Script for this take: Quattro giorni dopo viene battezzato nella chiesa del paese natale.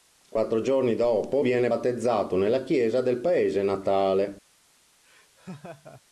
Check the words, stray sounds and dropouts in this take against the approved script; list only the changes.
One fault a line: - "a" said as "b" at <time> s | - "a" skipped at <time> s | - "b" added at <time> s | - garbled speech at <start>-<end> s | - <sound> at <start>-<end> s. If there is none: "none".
- laugh at 5.0-6.0 s